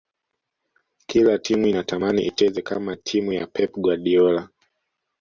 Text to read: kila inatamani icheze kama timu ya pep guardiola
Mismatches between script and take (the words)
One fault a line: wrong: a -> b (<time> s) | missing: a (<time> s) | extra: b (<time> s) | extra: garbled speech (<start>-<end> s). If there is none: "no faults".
extra: timu (1.4 s)